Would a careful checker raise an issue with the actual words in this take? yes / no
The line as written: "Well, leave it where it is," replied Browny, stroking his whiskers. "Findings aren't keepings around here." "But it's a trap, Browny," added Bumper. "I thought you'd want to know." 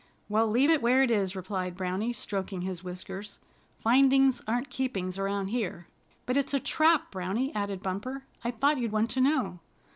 no